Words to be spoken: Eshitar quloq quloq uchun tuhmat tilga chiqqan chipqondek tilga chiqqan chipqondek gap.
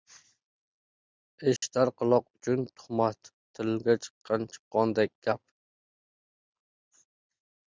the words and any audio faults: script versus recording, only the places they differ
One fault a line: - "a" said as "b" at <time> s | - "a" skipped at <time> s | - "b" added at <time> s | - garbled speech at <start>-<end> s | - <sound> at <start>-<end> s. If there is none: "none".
- dropout at 1.6-1.6 s
- "quloq" skipped at 2.2 s
- "tilga chiqqan chipqondek" skipped at 5.1 s